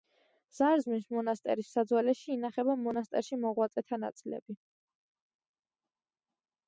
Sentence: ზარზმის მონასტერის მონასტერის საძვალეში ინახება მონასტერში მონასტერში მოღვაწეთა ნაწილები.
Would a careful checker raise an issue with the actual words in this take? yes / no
yes